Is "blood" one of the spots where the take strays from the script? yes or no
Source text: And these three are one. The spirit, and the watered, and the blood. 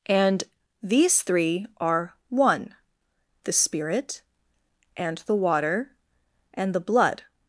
no